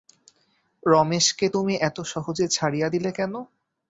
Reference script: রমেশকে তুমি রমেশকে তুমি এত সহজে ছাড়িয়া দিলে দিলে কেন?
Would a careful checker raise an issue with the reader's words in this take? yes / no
yes